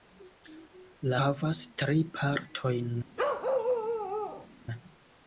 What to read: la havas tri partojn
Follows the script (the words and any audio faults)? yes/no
no